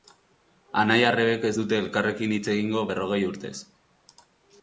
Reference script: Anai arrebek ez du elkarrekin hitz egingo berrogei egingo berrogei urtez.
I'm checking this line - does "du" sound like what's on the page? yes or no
no